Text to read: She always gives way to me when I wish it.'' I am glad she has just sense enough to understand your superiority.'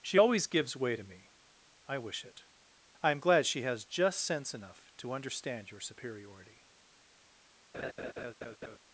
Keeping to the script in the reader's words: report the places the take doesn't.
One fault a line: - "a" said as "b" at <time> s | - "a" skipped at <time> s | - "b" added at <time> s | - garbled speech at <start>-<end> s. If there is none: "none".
- "when" skipped at 1.3 s